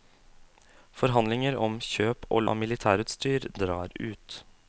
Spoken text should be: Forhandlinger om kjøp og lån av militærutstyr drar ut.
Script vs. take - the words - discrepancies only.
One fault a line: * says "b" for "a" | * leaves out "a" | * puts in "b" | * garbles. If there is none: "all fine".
* leaves out "lån"